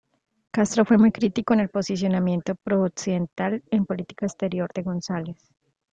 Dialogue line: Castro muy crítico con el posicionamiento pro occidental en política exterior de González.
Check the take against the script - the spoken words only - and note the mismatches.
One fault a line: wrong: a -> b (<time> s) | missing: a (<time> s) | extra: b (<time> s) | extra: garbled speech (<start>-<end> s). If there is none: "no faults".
extra: fue (0.8 s)